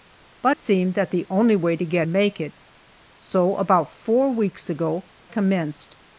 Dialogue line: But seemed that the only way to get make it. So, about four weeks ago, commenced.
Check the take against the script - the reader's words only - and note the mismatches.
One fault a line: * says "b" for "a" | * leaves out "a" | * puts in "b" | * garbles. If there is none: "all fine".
all fine